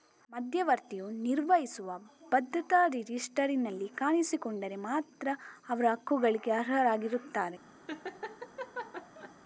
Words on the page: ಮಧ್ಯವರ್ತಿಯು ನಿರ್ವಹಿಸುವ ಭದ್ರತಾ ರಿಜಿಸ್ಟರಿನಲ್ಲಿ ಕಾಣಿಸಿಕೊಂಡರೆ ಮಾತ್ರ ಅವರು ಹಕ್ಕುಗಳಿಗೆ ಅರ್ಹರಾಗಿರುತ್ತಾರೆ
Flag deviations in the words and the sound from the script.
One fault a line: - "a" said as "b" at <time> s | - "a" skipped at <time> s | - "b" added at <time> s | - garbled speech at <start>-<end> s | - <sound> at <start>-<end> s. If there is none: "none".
- laugh at 7.9-9.3 s